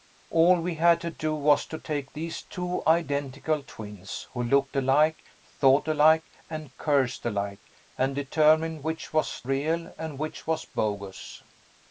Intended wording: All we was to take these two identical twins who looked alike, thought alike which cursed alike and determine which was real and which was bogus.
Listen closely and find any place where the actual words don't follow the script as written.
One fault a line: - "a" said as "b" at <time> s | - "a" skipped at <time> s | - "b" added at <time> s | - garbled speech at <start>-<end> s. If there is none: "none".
- "had to do" added at 0.7 s
- "which" said as "and" at 6.5 s